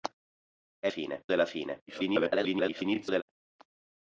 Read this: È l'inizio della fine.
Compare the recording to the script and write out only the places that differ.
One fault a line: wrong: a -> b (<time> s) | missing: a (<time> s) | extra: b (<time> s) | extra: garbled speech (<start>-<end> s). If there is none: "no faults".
wrong: l'inizio -> fine (0.9 s)
extra: garbled speech (1.9-3.2 s)